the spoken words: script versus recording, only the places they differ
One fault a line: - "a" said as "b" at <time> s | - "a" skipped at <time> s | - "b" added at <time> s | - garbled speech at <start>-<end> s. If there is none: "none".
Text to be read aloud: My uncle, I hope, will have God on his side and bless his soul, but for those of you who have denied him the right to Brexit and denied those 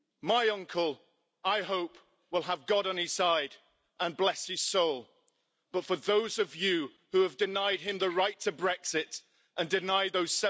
none